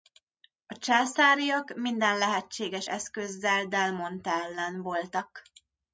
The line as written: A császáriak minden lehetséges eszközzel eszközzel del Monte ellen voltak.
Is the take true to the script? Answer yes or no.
no